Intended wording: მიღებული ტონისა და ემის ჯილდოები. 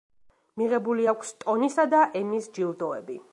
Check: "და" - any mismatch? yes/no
no